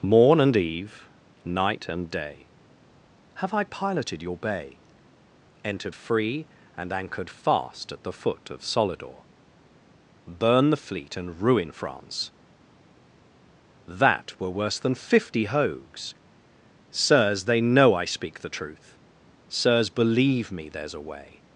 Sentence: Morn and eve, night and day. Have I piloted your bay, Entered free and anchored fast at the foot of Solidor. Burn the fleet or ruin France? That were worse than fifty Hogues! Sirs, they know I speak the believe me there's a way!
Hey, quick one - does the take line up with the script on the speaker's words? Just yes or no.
no